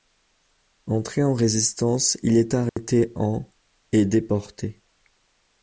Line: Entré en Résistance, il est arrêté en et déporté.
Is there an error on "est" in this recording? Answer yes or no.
no